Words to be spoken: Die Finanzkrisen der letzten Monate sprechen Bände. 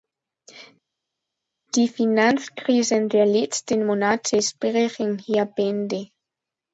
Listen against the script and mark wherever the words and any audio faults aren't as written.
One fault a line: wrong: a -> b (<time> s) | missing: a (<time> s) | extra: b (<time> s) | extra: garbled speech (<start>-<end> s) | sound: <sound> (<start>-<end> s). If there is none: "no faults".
extra: hier (5.2 s)